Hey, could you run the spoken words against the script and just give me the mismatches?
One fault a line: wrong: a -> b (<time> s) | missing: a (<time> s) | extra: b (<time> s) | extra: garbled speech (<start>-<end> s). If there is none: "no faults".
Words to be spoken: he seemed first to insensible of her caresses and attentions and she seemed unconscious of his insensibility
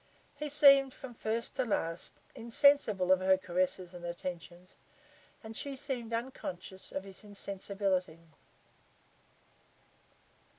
extra: from (0.9 s)
extra: last (1.6 s)